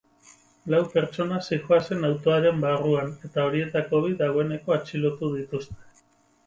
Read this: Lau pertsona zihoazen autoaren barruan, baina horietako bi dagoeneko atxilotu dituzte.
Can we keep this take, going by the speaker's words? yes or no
no